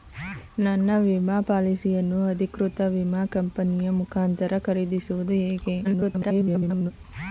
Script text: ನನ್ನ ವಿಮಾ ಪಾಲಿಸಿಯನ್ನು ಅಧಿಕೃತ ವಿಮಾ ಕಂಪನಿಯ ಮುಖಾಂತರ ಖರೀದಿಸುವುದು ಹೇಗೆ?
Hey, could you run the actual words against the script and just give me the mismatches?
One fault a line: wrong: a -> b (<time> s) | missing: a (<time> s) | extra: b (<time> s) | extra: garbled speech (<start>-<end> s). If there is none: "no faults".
extra: garbled speech (5.8-6.9 s)